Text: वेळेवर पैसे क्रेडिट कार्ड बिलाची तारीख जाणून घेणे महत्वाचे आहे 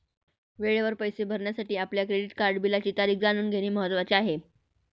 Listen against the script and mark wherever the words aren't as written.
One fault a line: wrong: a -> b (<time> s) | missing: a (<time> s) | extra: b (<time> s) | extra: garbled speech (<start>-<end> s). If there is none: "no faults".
extra: भरण्यासाठी आपल्या (1.2 s)